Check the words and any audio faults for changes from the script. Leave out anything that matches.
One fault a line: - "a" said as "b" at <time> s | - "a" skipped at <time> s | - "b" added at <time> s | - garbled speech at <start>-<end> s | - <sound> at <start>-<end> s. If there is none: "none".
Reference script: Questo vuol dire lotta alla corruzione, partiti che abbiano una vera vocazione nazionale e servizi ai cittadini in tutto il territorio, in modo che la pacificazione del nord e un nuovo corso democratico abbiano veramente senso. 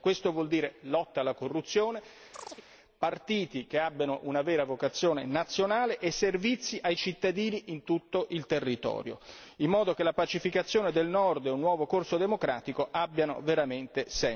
- chirp at 2.3-2.7 s